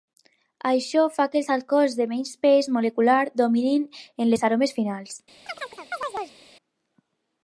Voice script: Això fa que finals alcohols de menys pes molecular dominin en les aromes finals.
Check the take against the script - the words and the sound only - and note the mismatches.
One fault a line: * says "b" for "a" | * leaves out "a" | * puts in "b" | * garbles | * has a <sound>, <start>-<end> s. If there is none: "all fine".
* says "els" for "finals"
* has a chirp, 5.5-6.4 s